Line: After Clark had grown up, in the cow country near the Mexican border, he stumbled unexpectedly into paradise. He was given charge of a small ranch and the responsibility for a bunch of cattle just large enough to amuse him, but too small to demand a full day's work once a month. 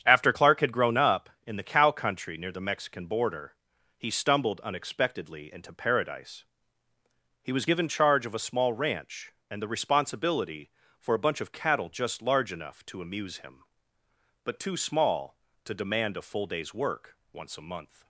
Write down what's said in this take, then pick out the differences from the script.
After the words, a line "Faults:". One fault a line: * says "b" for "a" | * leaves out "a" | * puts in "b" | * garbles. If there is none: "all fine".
After Clark had grown up, in the cow country near the Mexican border, he stumbled unexpectedly into paradise. He was given charge of a small ranch and the responsibility for a bunch of cattle just large enough to amuse him, but too small to demand a full day's work once a month.
Faults:
all fine